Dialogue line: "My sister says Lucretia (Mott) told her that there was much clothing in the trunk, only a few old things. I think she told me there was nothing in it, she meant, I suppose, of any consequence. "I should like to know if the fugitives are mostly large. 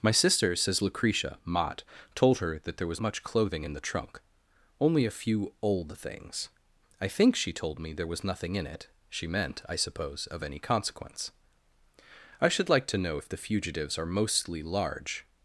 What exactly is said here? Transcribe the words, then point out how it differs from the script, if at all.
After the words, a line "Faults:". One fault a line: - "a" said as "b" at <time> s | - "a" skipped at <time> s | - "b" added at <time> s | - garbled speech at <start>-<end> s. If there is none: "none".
"My sister says Lucretia (Mott) told her that there was much clothing in the trunk, only a few old things. I think she told me there was nothing in it, she meant, I suppose, of any consequence. "I should like to know if the fugitives are mostly large.
Faults:
none